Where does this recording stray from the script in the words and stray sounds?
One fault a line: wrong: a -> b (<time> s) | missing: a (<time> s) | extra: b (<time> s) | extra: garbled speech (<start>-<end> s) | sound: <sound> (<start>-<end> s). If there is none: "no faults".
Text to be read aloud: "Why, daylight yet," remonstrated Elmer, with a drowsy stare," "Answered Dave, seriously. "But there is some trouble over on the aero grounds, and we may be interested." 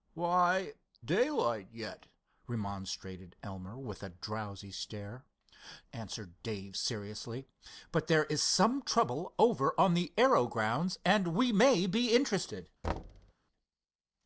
sound: thud (12.8-13.3 s)